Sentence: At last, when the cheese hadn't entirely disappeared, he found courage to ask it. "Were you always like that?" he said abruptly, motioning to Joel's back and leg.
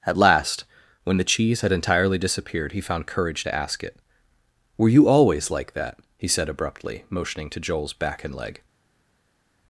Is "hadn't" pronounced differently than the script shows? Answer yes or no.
yes